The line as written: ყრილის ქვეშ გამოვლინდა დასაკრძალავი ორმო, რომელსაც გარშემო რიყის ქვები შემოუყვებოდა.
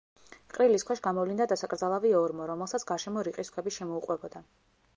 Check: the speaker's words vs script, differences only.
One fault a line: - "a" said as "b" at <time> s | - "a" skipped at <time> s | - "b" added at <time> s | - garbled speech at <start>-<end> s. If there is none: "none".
none